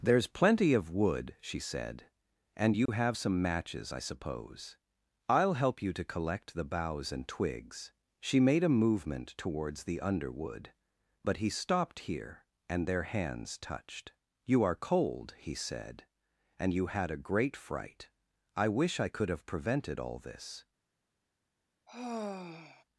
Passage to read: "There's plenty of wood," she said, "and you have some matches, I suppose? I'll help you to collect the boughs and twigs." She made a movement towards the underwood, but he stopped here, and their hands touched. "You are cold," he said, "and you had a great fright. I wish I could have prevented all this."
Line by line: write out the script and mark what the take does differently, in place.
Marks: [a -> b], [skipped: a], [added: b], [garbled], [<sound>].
"There's plenty of wood," she said, "and you [dropout] have some matches, I suppose? I'll help you to collect the boughs and twigs." She made a movement towards the underwood, but he stopped here, and their hands touched. "You are cold," he said, "and you had a great fright. I wish I could have prevented all this." [sigh]